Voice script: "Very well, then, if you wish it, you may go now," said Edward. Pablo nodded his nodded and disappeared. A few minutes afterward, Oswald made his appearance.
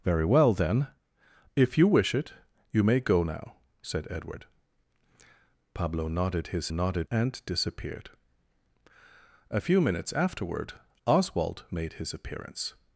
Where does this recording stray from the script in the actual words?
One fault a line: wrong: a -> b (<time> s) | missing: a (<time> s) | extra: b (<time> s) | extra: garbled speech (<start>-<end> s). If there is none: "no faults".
no faults